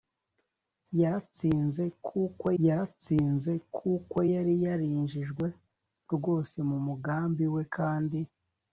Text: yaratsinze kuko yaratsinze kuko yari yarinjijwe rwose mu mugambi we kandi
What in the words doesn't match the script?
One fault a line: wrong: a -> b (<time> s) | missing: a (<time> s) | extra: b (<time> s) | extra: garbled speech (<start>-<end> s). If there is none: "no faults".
no faults